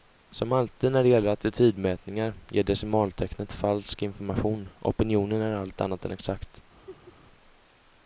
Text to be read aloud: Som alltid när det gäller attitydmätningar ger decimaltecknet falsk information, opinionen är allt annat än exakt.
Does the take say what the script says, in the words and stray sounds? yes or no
no